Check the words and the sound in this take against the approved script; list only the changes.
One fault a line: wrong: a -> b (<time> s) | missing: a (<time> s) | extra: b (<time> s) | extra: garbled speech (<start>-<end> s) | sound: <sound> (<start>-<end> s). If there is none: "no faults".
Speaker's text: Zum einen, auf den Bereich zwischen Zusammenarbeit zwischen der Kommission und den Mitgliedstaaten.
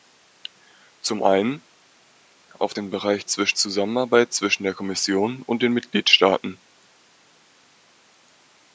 no faults